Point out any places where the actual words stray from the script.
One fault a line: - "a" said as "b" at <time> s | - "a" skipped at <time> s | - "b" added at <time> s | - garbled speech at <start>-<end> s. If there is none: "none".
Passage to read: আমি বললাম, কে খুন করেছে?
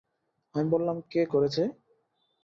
- "খুন" skipped at 1.2 s